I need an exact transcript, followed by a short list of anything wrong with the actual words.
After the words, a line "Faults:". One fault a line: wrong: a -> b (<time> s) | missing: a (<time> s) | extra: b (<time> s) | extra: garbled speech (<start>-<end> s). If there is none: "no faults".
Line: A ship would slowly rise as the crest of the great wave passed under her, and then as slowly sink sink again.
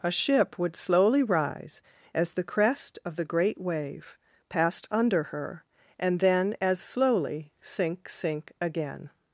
A ship would slowly rise as the crest of the great wave passed under her, and then as slowly sink sink again.
Faults:
no faults